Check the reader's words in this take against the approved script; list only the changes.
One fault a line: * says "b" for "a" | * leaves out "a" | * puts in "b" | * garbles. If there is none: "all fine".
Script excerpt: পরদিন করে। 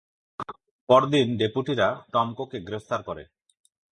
* puts in "ডেপুটিরা টমকোকে গ্রেফতার"